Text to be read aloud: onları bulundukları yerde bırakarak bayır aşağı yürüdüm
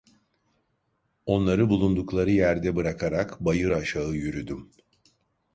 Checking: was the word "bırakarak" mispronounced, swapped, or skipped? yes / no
no